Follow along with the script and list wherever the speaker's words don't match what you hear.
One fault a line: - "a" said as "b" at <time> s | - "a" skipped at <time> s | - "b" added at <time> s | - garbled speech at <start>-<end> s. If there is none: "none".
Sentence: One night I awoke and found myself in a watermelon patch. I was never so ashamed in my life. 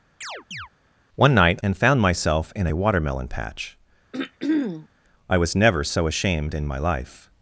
- "I awoke" skipped at 1.6 s